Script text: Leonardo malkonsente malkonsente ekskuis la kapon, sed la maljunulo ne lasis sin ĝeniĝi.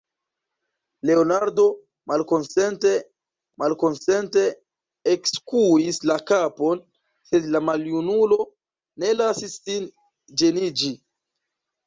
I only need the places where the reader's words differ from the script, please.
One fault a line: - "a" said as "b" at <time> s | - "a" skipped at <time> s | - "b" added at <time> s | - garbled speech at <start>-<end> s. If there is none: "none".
none